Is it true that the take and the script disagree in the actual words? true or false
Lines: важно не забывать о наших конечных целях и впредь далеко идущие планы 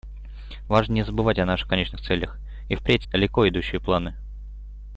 false